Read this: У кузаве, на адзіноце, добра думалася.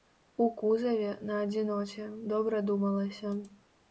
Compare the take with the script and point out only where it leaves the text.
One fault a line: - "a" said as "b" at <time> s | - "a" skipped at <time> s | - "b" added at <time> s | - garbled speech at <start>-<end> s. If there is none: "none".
none